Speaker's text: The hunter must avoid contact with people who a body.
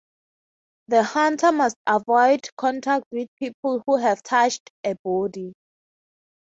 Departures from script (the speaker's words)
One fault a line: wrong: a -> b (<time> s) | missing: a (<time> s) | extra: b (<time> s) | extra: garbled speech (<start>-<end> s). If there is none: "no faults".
extra: have touched (4.0 s)